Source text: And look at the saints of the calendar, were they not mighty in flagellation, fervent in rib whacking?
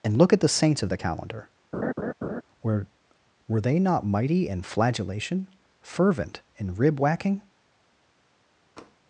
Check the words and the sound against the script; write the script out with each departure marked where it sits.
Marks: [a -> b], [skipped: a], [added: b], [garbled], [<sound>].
And look at the saints of the calendar, [laugh] were [added: were] they not mighty in flagellation, fervent in rib whacking? [tap]